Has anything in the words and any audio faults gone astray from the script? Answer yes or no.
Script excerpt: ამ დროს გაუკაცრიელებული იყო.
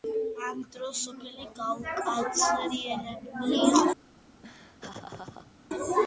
yes